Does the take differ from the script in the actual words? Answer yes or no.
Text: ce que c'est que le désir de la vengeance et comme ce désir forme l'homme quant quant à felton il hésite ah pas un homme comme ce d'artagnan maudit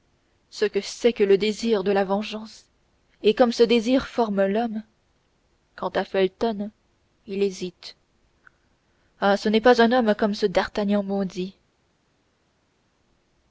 yes